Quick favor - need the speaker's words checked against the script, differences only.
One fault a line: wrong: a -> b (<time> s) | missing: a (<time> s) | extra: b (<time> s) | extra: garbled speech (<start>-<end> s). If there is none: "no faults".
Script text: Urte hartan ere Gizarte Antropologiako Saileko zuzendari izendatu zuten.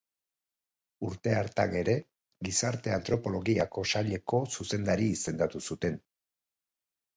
no faults